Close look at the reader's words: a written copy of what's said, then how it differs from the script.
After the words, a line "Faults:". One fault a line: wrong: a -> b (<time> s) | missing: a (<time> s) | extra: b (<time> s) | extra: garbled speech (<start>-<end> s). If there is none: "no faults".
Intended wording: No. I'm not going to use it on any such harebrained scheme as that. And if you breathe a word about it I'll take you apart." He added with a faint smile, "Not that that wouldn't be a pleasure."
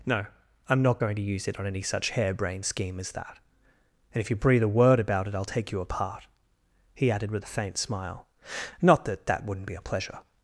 No. I'm not going to use it on any such harebrained scheme as that. And if you breathe a word about it I'll take you apart." He added with a faint smile, "Not that that wouldn't be a pleasure."
Faults:
no faults